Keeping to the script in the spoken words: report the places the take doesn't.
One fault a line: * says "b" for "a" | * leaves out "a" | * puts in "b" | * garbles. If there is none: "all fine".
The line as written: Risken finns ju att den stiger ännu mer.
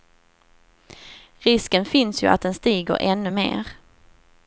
all fine